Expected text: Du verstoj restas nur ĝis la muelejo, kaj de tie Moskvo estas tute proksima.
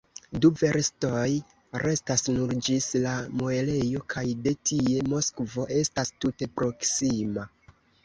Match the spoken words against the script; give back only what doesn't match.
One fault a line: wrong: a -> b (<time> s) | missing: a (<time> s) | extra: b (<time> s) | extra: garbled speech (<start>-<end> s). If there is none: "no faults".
no faults